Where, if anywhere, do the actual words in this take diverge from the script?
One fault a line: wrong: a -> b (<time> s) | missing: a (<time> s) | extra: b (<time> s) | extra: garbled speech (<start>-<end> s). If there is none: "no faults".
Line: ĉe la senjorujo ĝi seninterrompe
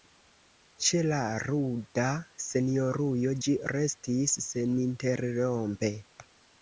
extra: ruda (1.4 s)
extra: restis (3.7 s)